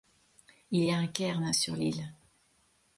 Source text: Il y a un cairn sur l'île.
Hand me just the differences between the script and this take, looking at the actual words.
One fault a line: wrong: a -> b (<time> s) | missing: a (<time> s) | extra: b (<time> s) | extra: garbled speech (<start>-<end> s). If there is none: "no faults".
no faults